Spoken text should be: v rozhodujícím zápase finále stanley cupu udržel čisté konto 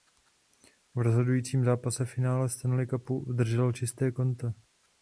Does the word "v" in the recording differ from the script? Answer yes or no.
no